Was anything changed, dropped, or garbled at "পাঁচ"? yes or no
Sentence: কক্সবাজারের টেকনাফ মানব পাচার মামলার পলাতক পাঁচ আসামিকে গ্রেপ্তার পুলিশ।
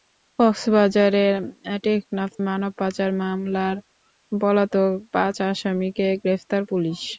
no